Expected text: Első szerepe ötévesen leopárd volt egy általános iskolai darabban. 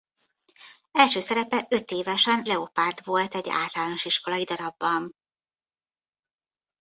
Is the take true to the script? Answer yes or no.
yes